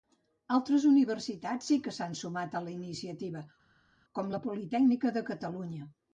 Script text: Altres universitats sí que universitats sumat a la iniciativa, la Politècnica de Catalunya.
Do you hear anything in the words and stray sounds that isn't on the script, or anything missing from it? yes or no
yes